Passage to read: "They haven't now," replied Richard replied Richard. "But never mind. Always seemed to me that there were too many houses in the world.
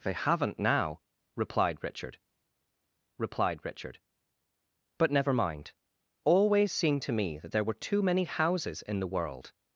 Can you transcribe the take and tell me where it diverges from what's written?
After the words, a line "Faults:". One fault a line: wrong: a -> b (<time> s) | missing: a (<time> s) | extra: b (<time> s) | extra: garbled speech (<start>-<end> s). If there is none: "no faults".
"They haven't now," replied Richard replied Richard. "But never mind. Always seemed to me that there were too many houses in the world.
Faults:
no faults